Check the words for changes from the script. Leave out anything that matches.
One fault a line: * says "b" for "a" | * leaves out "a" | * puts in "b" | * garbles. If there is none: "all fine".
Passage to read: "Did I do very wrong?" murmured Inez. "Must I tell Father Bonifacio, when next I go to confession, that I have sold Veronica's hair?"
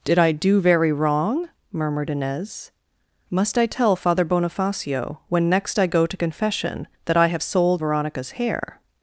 all fine